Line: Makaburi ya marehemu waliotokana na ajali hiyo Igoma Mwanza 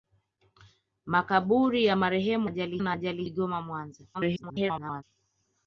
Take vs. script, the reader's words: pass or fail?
fail